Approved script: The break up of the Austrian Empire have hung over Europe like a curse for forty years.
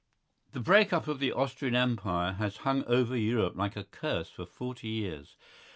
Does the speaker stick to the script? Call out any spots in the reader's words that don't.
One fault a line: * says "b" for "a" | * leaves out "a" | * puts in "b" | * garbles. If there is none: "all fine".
* says "has" for "have"